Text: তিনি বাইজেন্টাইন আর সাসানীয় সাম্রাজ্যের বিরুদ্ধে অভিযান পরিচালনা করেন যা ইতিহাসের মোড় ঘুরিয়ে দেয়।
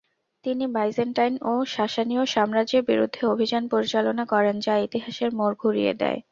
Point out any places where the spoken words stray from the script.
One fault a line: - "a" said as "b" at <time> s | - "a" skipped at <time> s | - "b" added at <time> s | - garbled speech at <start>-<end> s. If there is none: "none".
- "আর" said as "ও" at 1.4 s